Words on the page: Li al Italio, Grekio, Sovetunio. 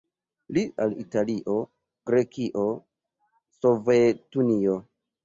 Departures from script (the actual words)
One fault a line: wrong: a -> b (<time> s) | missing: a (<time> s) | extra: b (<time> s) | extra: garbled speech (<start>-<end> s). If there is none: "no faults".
no faults